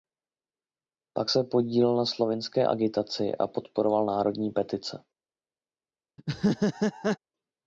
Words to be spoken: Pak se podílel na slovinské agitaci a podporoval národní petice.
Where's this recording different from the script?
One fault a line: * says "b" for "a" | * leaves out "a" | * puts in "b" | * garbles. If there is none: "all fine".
all fine